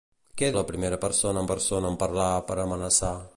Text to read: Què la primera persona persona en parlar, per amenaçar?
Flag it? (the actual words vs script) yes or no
no